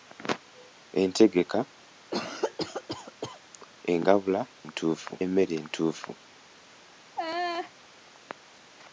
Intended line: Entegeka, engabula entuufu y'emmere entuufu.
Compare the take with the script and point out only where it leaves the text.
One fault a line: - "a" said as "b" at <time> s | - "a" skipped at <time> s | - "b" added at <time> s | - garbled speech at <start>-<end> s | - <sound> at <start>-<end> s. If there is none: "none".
- cough at 2.1-3.4 s
- laugh at 7.2-7.7 s